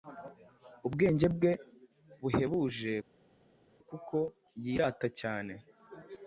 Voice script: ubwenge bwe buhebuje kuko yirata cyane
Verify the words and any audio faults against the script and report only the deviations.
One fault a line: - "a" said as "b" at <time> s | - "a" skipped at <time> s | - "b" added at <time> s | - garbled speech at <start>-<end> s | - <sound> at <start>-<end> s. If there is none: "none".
none